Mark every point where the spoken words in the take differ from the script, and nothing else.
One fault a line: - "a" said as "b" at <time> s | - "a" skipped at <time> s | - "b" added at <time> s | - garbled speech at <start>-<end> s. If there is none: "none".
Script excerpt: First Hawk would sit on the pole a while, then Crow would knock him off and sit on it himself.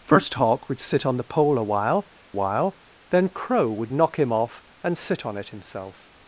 - "while" added at 2.3 s